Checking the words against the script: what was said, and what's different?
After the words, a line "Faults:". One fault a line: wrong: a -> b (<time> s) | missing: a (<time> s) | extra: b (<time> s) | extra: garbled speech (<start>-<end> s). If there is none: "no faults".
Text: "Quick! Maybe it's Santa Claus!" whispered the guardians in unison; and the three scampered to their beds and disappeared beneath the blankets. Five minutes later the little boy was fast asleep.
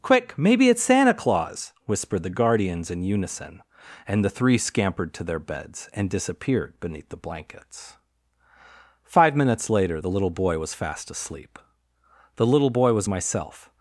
"Quick! Maybe it's Santa Claus!" whispered the guardians in unison; and the three scampered to their beds and disappeared beneath the blankets. Five minutes later the little boy was fast asleep. The little boy was myself
Faults:
extra: The little boy was myself (12.4 s)